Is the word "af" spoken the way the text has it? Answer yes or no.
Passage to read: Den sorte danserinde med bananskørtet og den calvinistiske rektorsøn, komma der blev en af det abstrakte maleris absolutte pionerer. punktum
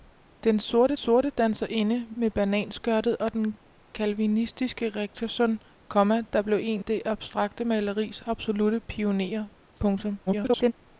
no